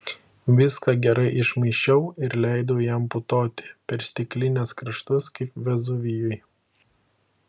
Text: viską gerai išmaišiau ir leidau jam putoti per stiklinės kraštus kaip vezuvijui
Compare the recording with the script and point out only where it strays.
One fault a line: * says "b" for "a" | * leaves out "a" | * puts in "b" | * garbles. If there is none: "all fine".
all fine